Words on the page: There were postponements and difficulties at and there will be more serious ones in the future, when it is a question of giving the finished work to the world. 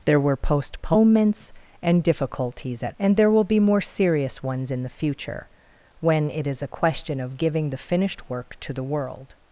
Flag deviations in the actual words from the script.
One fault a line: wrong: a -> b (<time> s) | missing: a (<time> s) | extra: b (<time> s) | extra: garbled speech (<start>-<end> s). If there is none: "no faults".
no faults